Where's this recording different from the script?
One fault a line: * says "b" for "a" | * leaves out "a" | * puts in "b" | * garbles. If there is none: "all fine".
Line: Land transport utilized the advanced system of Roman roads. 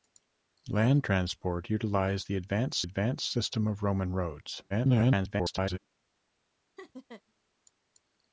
* puts in "advanced"
* garbles